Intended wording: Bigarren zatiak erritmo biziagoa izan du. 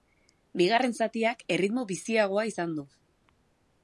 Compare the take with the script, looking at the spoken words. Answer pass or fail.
pass